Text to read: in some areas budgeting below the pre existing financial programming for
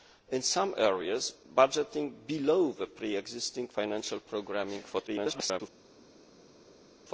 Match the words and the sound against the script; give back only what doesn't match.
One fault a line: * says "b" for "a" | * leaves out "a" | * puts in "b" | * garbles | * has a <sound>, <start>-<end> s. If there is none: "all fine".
* garbles